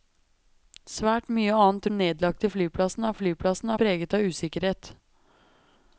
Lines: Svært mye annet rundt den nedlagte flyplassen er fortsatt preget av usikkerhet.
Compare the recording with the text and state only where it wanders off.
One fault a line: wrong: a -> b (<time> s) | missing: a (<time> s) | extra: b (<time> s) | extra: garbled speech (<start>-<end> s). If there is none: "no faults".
missing: rundt (1.9 s)
wrong: fortsatt -> flyplassen (3.2 s)